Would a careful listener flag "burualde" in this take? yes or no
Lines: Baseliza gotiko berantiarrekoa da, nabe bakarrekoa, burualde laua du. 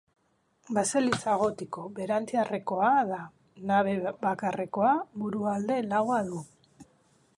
no